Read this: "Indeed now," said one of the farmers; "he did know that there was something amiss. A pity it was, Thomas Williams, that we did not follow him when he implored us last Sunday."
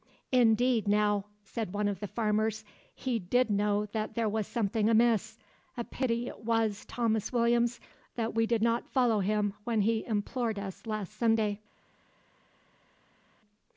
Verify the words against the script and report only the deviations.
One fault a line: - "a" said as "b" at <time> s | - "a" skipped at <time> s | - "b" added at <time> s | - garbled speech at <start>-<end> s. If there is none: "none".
none